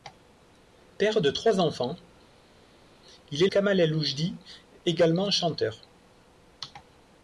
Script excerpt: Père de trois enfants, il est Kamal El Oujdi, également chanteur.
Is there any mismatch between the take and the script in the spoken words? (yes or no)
no